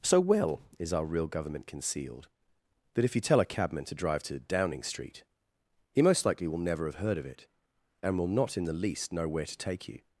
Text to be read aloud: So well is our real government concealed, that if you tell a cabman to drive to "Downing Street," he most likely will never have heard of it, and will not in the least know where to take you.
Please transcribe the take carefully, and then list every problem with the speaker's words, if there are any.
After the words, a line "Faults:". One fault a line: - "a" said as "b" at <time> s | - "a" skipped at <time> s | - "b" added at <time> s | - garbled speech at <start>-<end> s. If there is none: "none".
So well is our real government concealed, that if you tell a cabman to drive to "Downing Street," he most likely will never have heard of it, and will not in the least know where to take you.
Faults:
none